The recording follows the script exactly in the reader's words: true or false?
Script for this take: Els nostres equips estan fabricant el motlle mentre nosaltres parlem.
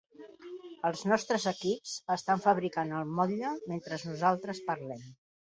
true